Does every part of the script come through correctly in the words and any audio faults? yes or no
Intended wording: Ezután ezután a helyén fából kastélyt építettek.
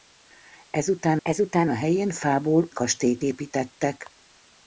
yes